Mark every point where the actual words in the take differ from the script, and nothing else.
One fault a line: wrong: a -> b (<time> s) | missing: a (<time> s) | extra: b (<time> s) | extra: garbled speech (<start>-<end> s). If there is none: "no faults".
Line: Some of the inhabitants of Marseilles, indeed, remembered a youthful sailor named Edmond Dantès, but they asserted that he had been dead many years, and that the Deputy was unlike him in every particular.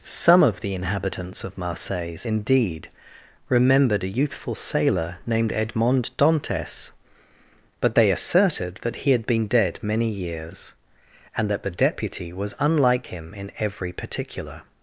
no faults